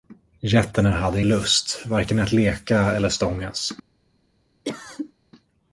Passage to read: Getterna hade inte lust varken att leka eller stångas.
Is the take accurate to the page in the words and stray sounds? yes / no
no